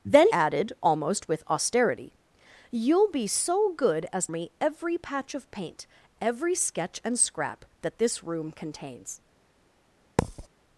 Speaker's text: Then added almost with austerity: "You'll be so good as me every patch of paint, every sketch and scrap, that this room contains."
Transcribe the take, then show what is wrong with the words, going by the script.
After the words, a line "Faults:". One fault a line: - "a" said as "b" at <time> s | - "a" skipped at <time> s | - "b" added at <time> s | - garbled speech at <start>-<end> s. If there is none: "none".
Then added almost with austerity: "You'll be so good as me every patch of paint, every sketch and scrap, that this room contains."
Faults:
none